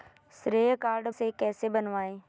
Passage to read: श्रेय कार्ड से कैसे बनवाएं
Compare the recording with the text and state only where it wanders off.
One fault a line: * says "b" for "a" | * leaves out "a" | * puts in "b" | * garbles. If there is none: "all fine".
all fine